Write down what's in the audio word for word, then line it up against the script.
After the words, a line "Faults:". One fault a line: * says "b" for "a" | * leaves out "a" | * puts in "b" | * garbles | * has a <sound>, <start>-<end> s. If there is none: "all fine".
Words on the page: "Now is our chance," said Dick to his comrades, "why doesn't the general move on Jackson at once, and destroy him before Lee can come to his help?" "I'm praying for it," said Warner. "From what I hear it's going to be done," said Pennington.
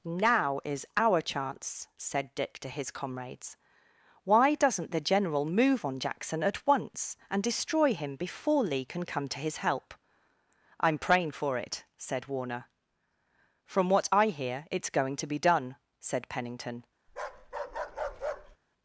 "Now is our chance," said Dick to his comrades, "why doesn't the general move on Jackson at once, and destroy him before Lee can come to his help?" "I'm praying for it," said Warner. "From what I hear it's going to be done," said Pennington.
Faults:
* has a bark, 17.1-18.6 s